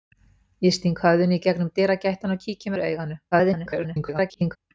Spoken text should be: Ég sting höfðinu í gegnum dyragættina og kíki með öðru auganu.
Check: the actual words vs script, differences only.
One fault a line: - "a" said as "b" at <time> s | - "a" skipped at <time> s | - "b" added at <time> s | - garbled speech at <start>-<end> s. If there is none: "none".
- "með" skipped at 2.8 s
- garbled speech at 3.3-4.6 s